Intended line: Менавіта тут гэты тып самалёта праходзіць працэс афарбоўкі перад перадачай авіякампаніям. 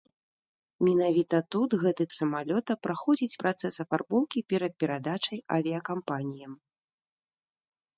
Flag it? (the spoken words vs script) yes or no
yes